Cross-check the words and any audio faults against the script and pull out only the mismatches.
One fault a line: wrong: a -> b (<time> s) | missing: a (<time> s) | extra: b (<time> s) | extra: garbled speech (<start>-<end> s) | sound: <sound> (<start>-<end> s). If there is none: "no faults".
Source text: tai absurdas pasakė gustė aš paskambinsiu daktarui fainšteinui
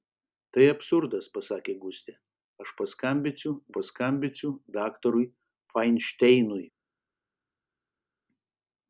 extra: paskambinsiu (3.7 s)